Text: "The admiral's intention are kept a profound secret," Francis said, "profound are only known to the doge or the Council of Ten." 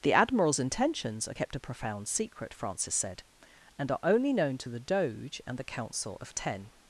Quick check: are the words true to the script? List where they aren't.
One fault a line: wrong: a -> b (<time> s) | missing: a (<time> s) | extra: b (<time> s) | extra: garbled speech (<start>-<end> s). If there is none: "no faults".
wrong: intention -> intentions (0.6 s)
wrong: profound -> and (3.8 s)
wrong: or -> and (5.5 s)